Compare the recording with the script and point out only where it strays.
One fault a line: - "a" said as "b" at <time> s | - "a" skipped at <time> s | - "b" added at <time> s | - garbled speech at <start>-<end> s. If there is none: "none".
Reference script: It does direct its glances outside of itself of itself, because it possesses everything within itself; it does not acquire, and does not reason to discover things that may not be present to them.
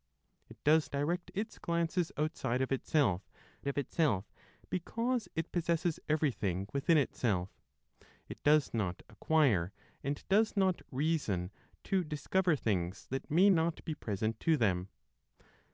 none